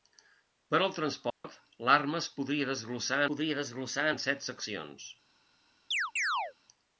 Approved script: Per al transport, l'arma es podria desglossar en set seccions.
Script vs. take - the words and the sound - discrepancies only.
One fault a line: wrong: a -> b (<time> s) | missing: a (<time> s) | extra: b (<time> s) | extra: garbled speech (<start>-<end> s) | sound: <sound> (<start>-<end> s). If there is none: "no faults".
sound: dropout (1.3-1.4 s)
extra: podria desglossar (3.3 s)
sound: chirp (5.9-6.5 s)